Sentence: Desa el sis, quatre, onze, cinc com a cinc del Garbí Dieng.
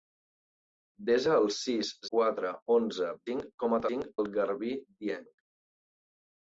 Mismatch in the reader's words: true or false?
false